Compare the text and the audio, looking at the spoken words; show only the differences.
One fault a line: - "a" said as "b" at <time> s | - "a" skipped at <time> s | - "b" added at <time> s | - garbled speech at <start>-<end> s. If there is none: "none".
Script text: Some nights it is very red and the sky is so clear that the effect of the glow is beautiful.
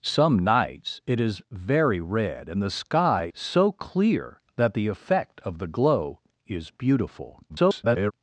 - "is" skipped at 3.3 s
- garbled speech at 7.5-8.1 s